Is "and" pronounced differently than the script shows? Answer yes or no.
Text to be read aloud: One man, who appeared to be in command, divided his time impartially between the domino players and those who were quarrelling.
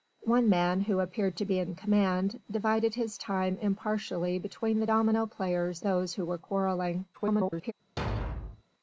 yes